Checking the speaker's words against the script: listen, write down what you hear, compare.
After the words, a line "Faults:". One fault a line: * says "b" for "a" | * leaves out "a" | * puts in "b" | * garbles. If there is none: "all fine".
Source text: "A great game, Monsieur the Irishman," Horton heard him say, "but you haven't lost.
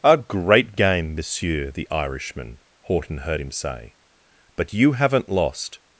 "A great game, Monsieur the Irishman," Horton heard him say, "but you haven't lost.
Faults:
all fine